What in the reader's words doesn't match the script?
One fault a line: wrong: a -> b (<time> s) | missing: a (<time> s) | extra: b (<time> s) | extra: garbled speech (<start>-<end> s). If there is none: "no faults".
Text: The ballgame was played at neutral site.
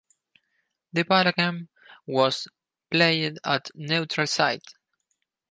no faults